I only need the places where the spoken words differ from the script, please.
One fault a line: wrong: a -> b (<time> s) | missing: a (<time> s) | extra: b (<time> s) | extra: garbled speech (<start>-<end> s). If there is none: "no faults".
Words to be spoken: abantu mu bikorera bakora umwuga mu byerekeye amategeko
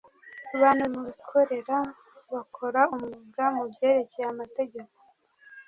no faults